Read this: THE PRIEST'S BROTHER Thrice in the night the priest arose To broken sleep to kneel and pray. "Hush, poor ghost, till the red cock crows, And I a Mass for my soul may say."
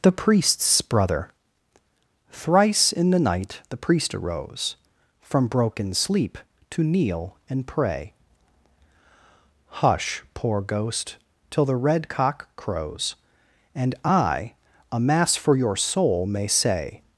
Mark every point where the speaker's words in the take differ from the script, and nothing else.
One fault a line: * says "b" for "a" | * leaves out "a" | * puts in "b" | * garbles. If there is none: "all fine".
* says "From" for "To"
* says "your" for "my"